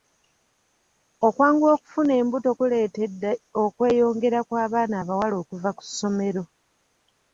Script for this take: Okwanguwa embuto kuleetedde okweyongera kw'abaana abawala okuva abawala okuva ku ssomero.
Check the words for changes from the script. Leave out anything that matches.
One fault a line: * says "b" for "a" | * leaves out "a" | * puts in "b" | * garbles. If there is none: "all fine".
* puts in "okufuna"
* leaves out "abawala okuva"